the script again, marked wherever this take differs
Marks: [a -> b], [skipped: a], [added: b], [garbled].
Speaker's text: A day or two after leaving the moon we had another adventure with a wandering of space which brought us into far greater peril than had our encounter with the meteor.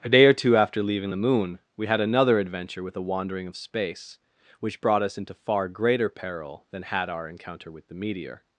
A day or two after leaving the moon we had another adventure with a wandering of space which brought us into far greater peril than had our encounter with the meteor.